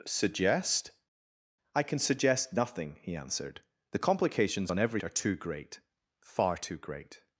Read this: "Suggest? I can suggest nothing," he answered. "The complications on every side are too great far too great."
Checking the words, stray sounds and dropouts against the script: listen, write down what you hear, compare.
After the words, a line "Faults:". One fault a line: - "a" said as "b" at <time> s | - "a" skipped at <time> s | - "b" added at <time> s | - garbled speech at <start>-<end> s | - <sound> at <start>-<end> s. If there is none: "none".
"Suggest? I can suggest nothing," he answered. "The complications on every are too great far too great."
Faults:
- "side" skipped at 5.0 s